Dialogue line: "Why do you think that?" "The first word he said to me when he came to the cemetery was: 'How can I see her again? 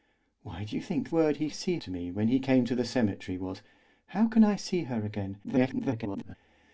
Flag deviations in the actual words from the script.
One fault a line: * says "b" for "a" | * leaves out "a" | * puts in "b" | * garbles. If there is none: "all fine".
* leaves out "that The first"
* says "see" for "said"
* garbles